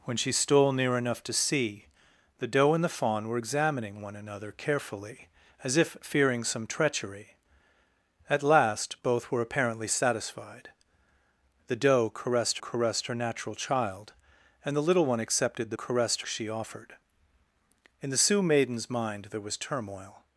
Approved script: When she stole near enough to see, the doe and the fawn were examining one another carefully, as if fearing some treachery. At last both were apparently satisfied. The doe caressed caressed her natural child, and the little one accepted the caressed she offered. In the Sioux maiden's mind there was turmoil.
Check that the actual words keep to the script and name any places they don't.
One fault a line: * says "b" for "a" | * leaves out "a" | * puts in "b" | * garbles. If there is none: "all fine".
all fine